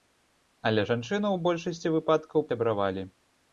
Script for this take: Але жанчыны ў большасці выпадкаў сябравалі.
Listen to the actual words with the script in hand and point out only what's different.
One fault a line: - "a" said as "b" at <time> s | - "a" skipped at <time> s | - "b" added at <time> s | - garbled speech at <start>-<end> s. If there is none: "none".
none